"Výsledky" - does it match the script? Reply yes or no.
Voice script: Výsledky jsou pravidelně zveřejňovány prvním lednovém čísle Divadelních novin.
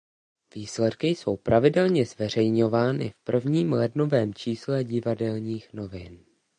yes